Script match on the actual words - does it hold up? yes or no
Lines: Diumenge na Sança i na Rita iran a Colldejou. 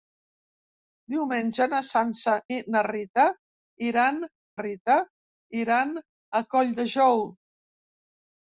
no